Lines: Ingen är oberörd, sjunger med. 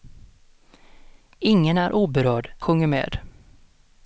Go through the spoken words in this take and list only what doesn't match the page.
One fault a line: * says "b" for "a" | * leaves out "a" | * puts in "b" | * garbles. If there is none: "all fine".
all fine